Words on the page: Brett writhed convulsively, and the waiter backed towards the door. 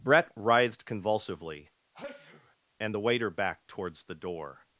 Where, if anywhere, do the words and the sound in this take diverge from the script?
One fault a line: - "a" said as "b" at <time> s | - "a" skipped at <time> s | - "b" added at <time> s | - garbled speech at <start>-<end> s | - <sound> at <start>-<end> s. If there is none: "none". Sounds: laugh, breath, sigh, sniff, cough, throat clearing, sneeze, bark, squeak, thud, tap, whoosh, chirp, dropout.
- sneeze at 1.9-2.6 s